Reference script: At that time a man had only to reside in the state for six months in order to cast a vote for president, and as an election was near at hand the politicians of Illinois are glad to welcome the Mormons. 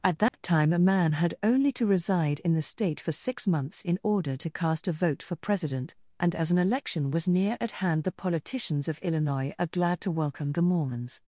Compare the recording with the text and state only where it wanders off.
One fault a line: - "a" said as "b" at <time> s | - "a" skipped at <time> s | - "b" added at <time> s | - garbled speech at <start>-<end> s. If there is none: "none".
none